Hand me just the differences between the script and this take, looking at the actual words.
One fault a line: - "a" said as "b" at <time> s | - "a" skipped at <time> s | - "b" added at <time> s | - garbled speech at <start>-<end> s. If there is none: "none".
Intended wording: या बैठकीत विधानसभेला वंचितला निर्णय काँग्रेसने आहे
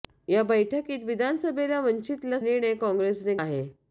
none